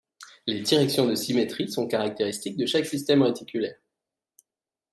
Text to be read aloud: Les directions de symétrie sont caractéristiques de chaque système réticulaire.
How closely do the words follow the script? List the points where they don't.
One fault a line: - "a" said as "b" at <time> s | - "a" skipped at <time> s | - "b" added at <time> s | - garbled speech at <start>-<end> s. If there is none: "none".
none